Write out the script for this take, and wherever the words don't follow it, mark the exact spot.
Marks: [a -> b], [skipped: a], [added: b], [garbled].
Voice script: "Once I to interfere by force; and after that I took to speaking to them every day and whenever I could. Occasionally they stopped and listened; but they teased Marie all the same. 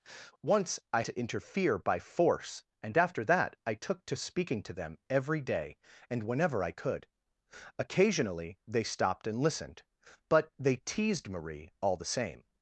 "Once I to interfere by force; and after that I took to speaking to them every day and whenever I could. Occasionally they stopped and listened; but they teased Marie all the same.